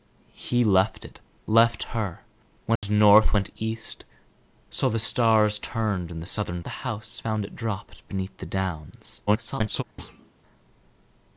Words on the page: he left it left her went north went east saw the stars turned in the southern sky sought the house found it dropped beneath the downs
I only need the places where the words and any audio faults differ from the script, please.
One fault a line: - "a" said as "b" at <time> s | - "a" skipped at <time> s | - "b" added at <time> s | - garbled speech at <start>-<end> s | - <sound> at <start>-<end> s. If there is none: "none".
- dropout at 2.8-2.8 s
- "sky sought" skipped at 6.6 s
- garbled speech at 9.3-9.8 s
- thud at 10.0-10.3 s